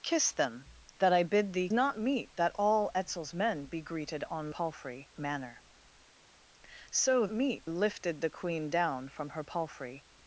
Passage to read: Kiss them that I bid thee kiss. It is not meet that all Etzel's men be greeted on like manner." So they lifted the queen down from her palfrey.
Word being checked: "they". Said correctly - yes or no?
no